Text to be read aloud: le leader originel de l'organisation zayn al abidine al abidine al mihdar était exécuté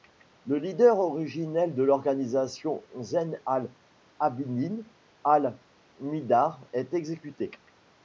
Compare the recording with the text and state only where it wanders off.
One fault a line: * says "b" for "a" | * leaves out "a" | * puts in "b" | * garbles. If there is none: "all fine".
* leaves out "abidine al"
* says "est" for "était"